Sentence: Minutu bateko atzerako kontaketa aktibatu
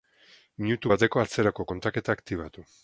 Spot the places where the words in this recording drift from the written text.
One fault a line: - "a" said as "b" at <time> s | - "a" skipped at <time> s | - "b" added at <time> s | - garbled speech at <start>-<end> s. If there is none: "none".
none